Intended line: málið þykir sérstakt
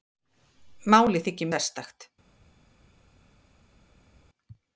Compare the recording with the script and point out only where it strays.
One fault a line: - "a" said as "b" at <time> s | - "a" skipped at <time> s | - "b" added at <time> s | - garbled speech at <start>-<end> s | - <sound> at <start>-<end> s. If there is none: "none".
none